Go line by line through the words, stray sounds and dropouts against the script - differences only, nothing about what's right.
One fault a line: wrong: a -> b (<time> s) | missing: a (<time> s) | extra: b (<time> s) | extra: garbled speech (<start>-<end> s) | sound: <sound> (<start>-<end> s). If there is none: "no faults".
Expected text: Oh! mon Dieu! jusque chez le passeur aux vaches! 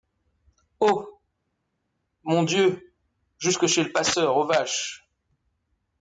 no faults